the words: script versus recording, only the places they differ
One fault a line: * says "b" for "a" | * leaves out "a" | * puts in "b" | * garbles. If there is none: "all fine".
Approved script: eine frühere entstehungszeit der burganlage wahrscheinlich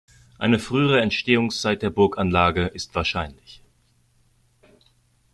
* puts in "ist"